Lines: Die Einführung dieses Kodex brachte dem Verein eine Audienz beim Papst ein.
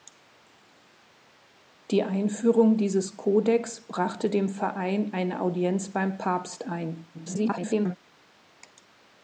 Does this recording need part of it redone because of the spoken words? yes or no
yes